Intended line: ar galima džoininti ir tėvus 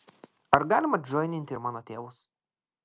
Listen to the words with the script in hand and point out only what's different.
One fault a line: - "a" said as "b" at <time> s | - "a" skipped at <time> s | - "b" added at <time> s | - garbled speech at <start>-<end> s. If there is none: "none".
- "mano" added at 1.7 s